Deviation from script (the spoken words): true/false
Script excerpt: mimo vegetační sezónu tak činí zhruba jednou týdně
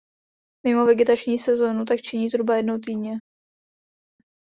false